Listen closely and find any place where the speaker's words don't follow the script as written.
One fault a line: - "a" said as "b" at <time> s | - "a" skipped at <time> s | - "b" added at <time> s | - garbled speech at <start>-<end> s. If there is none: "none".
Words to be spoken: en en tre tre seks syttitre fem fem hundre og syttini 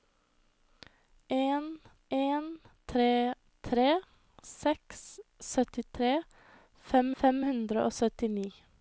none